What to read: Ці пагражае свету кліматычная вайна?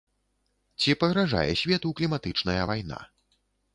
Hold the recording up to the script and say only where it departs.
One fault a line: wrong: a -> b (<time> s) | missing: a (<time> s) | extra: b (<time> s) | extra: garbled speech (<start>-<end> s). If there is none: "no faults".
no faults